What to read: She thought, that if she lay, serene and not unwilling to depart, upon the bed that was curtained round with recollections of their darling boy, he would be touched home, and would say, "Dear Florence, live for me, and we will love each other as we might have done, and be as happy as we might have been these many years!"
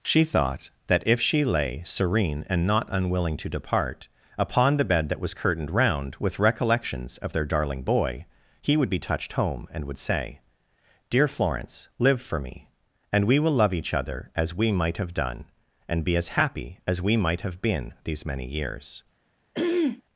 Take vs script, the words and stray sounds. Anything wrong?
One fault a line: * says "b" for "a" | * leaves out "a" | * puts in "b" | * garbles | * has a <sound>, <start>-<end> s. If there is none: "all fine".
* has a throat clearing, 19.5-20.0 s